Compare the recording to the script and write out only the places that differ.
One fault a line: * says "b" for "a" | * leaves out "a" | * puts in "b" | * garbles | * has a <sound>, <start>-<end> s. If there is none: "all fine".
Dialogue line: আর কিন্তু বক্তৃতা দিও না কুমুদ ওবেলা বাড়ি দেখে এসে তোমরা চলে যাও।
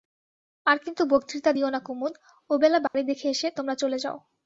* has a dropout, 2.9-2.9 s